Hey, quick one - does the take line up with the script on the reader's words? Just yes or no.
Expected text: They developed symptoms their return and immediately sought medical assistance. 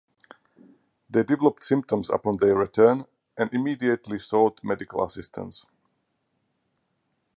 no